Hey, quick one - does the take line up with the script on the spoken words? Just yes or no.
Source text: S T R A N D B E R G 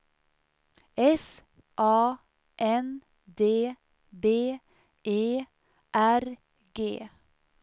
no